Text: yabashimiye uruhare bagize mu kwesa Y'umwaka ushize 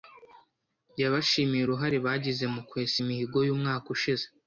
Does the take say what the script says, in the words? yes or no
no